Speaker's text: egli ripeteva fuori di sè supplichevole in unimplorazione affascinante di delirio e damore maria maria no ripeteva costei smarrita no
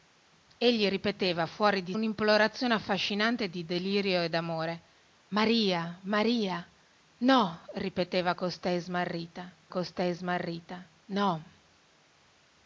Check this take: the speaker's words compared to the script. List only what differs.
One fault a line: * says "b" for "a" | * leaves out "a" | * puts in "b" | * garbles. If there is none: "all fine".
* leaves out "sè supplichevole in"
* puts in "costei smarrita"